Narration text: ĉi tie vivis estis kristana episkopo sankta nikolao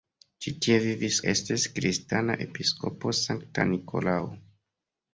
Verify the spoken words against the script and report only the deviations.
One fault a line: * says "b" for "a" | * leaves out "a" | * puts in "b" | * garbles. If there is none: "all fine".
all fine